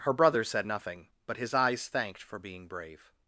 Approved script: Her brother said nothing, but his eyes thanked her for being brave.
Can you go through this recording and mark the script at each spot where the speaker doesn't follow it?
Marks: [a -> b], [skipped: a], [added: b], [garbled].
Her brother said nothing, but his eyes thanked [skipped: her] for being brave.